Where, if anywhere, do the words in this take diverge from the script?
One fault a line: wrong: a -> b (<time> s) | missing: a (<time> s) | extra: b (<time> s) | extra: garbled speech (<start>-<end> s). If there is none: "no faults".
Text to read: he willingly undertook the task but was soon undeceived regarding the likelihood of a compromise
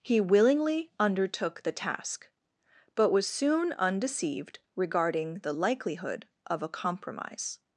no faults